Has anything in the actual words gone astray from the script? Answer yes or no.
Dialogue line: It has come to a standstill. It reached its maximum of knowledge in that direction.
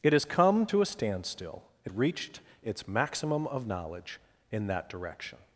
no